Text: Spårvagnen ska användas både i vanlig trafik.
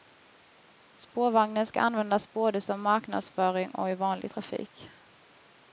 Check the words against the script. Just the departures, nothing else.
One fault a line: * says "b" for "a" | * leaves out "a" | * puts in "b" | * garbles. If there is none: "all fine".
* puts in "som marknadsföring och"